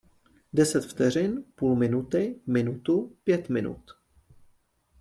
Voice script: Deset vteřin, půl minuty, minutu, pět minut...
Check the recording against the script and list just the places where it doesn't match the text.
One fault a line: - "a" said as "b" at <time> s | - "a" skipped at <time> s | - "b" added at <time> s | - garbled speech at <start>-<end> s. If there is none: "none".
none